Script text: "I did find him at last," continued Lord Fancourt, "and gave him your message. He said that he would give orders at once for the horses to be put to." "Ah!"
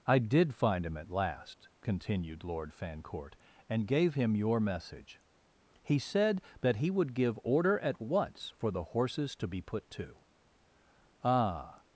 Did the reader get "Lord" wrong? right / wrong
right